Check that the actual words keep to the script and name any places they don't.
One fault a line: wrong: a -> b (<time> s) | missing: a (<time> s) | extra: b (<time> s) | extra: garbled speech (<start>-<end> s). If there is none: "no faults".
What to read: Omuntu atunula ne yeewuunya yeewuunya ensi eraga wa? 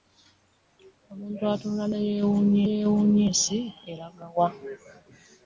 no faults